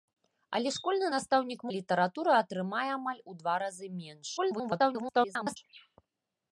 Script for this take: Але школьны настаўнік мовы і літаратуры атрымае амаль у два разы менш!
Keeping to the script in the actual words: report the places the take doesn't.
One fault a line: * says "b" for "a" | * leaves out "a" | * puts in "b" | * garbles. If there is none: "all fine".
* leaves out "мовы"
* garbles